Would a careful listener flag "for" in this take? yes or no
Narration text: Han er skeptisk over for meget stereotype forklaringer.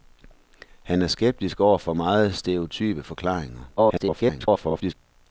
no